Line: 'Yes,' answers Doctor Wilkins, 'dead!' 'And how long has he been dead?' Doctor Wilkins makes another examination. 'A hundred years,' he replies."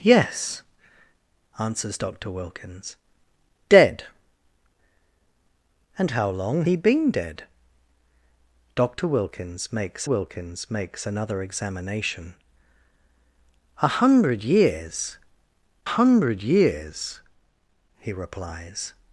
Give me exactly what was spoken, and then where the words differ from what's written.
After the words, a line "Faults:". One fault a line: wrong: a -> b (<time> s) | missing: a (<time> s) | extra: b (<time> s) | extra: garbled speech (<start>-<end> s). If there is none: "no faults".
'Yes,' answers Doctor Wilkins, 'dead!' 'And how long he been dead?' Doctor Wilkins makes Wilkins makes another examination. 'A hundred years hundred years,' he replies."
Faults:
missing: has (6.6 s)
extra: Wilkins makes (10.0 s)
extra: hundred years (15.8 s)